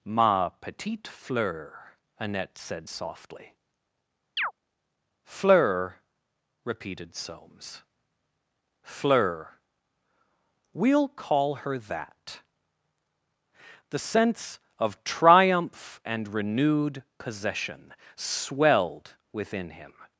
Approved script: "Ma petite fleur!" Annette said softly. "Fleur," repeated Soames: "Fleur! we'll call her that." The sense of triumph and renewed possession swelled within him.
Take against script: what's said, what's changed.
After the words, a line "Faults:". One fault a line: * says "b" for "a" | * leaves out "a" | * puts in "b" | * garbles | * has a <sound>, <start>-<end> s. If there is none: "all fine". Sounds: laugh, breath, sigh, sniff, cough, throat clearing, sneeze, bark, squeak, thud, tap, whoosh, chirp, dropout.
"Ma petite fleur!" Annette said softly. "Fleur," repeated Soames: "Fleur! we'll call her that." The sense of triumph and renewed possession swelled within him.
Faults:
* has a chirp, 4.4-4.5 s